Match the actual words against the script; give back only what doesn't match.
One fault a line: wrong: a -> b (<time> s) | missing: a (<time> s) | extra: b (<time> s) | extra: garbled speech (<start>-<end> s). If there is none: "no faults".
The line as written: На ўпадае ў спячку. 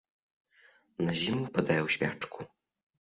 extra: зіму (1.2 s)